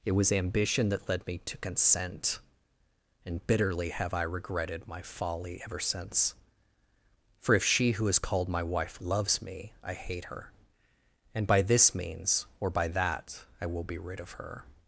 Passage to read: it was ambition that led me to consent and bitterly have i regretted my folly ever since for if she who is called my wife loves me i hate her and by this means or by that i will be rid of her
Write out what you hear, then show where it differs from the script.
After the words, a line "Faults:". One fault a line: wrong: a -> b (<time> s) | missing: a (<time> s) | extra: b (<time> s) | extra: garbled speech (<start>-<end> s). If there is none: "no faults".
it was ambition that led me to consent and bitterly have i regretted my folly ever since for if she who is called my wife loves me i hate her and by this means or by that i will be rid of her
Faults:
no faults